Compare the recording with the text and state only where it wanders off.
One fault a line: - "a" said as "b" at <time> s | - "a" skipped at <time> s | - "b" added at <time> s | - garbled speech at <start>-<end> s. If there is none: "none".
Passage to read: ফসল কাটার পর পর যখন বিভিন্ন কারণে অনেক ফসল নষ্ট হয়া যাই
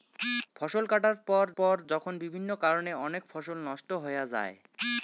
none